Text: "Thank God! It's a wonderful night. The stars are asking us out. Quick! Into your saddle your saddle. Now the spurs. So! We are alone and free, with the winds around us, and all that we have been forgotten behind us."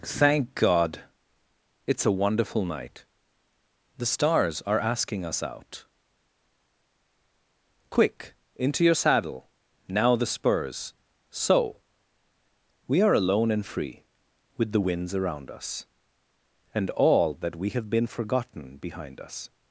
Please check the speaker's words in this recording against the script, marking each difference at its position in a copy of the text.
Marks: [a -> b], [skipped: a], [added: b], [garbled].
"Thank God! It's a wonderful night. The stars are asking us out. Quick! Into your saddle [skipped: your saddle.] Now the spurs. So! We are alone and free, with the winds around us, and all that we have been forgotten behind us."